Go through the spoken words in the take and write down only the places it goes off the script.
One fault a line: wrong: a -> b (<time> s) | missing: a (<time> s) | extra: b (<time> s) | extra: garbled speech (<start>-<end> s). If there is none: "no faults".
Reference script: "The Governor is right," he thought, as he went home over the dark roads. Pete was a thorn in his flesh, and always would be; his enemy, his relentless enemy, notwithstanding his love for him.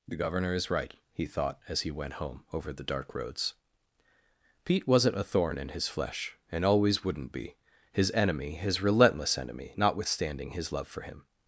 wrong: was -> wasn't (4.9 s)
wrong: would -> wouldn't (7.0 s)